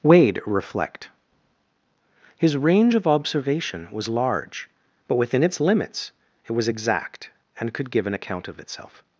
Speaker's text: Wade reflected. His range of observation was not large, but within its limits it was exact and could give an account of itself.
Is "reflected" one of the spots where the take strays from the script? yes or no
yes